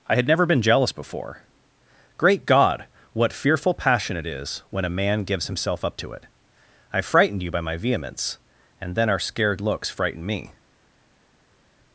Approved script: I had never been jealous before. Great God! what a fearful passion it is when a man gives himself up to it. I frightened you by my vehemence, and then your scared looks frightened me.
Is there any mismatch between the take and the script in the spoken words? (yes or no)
yes